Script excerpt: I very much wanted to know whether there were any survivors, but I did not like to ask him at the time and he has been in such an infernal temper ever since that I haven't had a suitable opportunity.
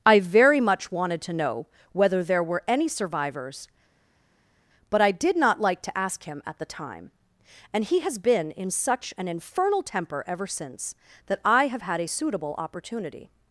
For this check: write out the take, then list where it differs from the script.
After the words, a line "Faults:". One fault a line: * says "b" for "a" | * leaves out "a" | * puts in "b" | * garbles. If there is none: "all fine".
I very much wanted to know whether there were any survivors, but I did not like to ask him at the time and he has been in such an infernal temper ever since that I have had a suitable opportunity.
Faults:
* says "have" for "haven't"